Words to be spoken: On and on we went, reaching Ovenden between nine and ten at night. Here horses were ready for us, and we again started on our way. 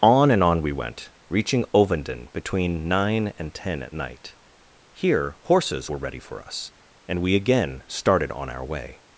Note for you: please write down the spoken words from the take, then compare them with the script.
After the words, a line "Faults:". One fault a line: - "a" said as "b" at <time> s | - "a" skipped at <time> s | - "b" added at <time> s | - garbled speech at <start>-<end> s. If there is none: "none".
On and on we went, reaching Ovenden between nine and ten at night. Here horses were ready for us, and we again started on our way.
Faults:
none